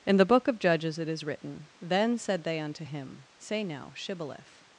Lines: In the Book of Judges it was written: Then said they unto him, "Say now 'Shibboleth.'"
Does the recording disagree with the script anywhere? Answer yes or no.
yes